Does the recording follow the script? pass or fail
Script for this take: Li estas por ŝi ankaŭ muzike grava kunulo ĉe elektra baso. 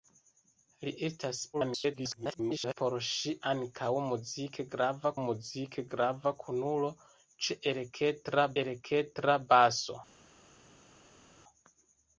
fail